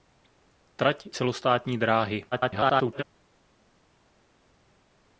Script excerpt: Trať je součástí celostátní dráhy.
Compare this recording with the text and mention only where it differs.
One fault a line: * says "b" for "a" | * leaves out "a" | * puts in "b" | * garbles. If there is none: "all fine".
* leaves out "je součástí"
* garbles